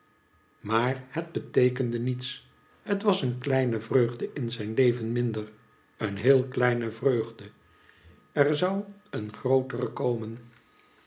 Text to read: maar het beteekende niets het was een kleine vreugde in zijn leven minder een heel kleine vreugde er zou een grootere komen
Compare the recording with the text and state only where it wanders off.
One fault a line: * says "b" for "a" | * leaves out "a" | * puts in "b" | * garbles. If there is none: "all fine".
all fine